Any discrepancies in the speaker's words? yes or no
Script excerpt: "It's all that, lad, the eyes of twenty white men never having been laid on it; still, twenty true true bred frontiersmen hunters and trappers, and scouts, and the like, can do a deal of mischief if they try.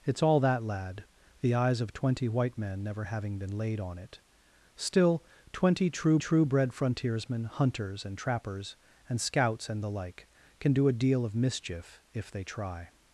no